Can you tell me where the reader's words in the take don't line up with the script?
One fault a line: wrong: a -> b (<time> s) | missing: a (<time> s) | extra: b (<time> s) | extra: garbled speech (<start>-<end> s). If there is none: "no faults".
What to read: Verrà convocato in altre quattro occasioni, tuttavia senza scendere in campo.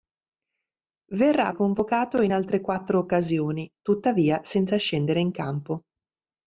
no faults